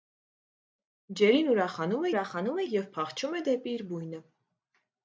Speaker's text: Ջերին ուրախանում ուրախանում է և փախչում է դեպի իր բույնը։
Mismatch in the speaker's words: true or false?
false